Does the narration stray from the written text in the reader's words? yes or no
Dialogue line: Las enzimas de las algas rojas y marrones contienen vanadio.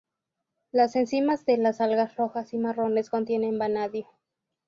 no